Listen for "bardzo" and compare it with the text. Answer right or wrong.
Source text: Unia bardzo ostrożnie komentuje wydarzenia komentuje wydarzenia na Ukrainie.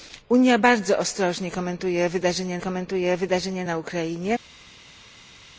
right